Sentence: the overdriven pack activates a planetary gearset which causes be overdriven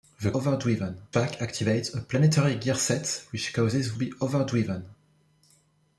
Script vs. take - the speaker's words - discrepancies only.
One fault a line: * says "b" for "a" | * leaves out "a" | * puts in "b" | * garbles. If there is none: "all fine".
all fine